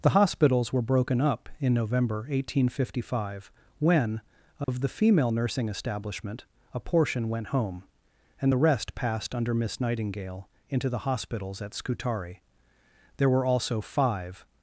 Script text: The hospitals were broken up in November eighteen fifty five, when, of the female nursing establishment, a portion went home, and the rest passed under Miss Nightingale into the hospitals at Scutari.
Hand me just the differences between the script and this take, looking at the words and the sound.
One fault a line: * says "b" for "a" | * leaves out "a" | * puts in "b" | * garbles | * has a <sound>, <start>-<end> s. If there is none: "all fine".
* has a dropout, 4.6-4.7 s
* puts in "There were also five"